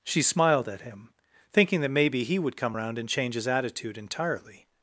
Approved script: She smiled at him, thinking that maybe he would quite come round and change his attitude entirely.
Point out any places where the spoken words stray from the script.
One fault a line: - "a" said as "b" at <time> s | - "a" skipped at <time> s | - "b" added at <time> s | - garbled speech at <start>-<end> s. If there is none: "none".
- "quite" skipped at 2.6 s